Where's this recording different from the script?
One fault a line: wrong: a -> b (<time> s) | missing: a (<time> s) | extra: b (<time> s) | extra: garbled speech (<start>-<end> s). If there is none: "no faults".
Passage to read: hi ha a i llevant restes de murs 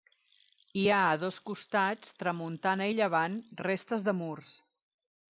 extra: dos costats tramuntana (1.2 s)